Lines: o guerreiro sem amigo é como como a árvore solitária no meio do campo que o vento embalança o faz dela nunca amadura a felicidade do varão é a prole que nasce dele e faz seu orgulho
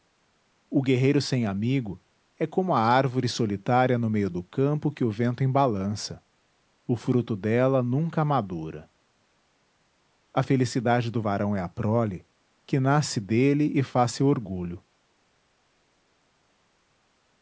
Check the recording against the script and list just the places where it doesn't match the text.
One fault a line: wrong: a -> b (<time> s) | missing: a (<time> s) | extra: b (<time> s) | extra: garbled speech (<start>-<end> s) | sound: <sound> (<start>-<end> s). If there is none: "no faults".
missing: como (2.7 s)
wrong: faz -> fruto (7.0 s)